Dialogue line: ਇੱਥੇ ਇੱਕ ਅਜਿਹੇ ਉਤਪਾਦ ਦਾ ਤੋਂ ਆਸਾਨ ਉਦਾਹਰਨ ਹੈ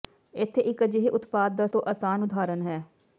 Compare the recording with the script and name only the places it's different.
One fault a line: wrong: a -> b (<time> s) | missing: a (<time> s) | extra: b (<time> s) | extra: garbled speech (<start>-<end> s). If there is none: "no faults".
no faults